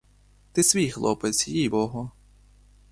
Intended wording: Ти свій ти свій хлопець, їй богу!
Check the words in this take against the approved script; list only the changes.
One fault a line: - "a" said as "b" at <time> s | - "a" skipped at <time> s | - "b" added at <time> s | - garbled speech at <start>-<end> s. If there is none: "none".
- "ти свій" skipped at 0.9 s